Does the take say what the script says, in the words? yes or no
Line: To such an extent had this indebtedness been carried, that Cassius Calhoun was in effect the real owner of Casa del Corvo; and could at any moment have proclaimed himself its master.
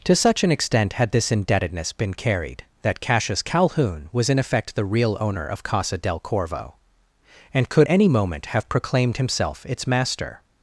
no